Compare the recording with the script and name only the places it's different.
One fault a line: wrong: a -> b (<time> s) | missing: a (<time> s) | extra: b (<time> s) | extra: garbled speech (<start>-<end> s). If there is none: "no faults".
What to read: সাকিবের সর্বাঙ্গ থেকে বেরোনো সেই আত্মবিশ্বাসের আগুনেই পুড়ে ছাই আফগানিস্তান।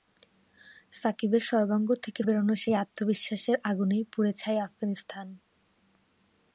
no faults